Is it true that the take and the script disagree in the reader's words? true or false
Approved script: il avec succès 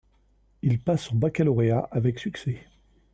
true